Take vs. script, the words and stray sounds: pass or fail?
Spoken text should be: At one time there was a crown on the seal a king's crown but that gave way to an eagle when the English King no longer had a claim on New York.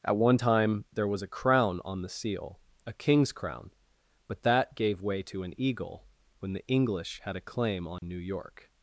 fail